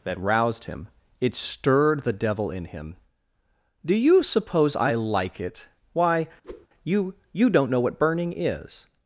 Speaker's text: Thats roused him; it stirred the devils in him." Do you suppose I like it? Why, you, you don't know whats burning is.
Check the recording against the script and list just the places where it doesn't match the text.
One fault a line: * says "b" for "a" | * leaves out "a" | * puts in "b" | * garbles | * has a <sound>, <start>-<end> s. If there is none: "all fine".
* says "That" for "Thats"
* says "devil" for "devils"
* has a whoosh, 6.4-6.7 s
* says "what" for "whats"